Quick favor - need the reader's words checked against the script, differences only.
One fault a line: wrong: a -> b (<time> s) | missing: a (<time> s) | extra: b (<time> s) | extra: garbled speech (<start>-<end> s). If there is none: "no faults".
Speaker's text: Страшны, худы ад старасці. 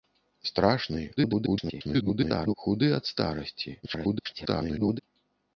extra: garbled speech (1.2-2.5 s)
extra: garbled speech (3.8-5.0 s)